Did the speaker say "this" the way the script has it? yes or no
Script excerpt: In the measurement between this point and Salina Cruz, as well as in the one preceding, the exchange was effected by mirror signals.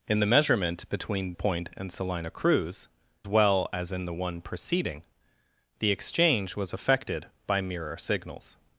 no